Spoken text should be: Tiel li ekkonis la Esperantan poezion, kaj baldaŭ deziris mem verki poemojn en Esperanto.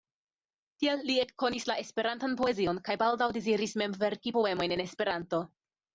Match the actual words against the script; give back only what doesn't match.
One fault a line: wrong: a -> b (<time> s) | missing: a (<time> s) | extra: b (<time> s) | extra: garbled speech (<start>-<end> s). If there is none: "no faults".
no faults